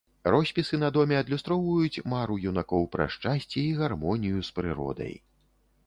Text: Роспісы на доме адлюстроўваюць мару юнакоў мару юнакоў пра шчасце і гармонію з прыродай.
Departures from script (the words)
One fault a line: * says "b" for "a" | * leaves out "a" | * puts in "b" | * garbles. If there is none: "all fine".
* leaves out "мару юнакоў"